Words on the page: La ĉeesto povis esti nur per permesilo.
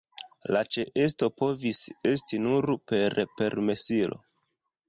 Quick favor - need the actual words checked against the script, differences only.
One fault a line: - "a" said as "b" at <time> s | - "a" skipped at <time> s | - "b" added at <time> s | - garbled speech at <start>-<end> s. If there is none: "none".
none